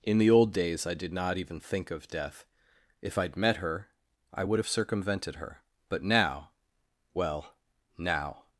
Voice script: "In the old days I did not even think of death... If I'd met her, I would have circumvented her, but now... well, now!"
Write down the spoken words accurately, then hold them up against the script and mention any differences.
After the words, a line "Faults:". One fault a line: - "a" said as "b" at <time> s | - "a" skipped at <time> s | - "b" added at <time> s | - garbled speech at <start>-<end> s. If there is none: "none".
"In the old days I did not even think of death... If I'd met her, I would have circumvented her, but now... well, now!"
Faults:
none